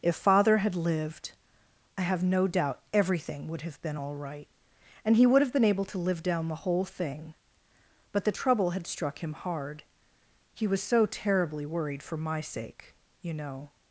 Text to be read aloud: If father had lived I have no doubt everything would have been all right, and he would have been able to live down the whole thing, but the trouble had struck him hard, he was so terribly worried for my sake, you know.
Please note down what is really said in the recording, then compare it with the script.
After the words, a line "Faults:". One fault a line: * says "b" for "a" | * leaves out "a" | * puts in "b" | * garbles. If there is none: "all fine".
If father had lived I have no doubt everything would have been all right, and he would have been able to live down the whole thing, but the trouble had struck him hard, he was so terribly worried for my sake, you know.
Faults:
all fine